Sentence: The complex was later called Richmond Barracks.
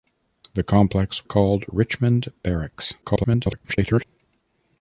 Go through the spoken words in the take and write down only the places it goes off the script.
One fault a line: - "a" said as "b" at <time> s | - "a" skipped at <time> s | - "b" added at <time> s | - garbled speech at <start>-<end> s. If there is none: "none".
- "was later" skipped at 1.3 s
- garbled speech at 3.0-4.0 s